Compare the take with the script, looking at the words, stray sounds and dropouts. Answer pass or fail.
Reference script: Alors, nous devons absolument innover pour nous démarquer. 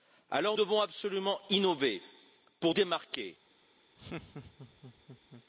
fail